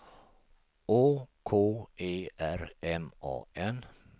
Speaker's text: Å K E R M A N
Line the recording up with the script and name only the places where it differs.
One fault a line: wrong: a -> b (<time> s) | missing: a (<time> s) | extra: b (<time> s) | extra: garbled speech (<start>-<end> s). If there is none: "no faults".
no faults